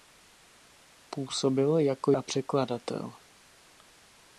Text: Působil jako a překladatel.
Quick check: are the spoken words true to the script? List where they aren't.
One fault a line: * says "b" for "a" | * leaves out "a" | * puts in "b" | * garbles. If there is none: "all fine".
all fine